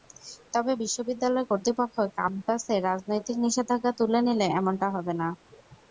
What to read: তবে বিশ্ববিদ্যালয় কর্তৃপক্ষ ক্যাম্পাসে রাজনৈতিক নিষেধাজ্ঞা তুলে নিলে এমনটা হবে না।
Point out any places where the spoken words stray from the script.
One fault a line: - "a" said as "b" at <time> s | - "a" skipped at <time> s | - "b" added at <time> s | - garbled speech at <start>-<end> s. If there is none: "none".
none